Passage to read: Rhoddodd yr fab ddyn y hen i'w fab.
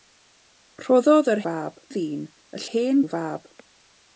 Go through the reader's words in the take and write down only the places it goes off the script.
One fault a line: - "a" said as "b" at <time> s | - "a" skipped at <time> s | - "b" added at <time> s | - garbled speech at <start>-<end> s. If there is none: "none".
none